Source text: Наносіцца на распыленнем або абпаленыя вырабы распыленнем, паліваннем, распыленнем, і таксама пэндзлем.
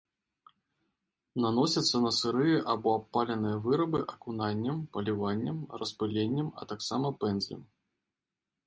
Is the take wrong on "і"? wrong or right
wrong